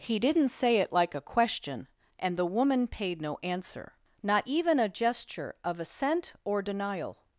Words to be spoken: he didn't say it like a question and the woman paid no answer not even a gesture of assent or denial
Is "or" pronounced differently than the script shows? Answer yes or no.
no